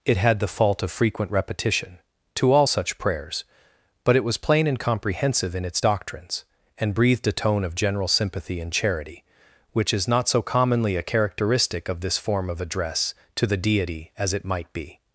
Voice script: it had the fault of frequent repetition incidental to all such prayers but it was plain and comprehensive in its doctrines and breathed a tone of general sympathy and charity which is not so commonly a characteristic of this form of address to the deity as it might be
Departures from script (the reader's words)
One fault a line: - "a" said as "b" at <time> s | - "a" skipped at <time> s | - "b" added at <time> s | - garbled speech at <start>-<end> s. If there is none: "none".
- "incidental" skipped at 2.0 s